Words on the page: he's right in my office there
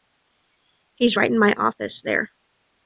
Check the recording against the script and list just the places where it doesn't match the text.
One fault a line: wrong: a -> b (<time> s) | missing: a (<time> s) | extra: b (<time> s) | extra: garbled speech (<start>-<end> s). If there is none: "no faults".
no faults